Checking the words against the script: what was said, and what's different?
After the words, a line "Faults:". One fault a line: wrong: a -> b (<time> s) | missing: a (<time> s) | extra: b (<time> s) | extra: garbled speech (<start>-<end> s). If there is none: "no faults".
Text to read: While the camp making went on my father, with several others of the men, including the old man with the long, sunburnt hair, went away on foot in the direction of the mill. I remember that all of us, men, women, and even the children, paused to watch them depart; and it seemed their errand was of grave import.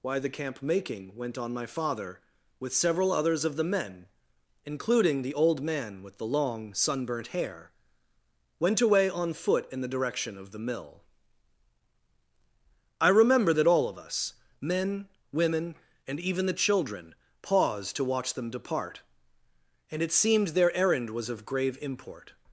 Why the camp making went on my father, with several others of the men, including the old man with the long, sunburnt hair, went away on foot in the direction of the mill. I remember that all of us, men, women, and even the children, paused to watch them depart; and it seemed their errand was of grave import.
Faults:
wrong: While -> Why (0.0 s)